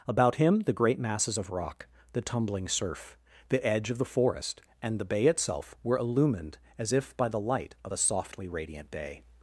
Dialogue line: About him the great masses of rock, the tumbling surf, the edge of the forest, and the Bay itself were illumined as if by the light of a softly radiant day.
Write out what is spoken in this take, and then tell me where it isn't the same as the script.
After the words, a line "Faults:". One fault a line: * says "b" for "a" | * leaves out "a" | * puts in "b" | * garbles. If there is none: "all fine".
About him the great masses of rock, the tumbling surf, the edge of the forest, and the Bay itself were illumined as if by the light of a softly radiant day.
Faults:
all fine